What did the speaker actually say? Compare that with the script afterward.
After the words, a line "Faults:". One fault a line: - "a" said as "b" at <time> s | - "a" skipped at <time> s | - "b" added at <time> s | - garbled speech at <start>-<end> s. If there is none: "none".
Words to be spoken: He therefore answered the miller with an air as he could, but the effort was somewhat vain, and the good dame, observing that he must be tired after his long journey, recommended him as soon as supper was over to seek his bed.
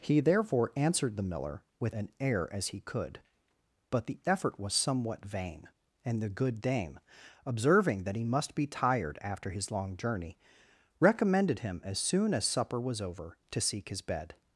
He therefore answered the miller with an air as he could, but the effort was somewhat vain, and the good dame, observing that he must be tired after his long journey, recommended him as soon as supper was over to seek his bed.
Faults:
none